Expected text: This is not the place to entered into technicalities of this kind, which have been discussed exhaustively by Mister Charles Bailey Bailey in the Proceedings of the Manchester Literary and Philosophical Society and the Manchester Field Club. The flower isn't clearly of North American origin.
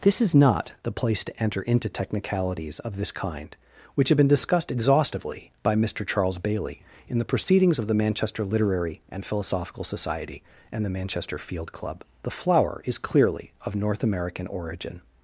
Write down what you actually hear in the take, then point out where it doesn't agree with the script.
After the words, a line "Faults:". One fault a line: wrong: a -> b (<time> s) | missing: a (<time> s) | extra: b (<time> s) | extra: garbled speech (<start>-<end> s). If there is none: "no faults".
This is not the place to enter into technicalities of this kind, which have been discussed exhaustively by Mister Charles Bailey in the Proceedings of the Manchester Literary and Philosophical Society and the Manchester Field Club. The flower is clearly of North American origin.
Faults:
wrong: entered -> enter (1.4 s)
missing: Bailey (6.8 s)
wrong: isn't -> is (12.9 s)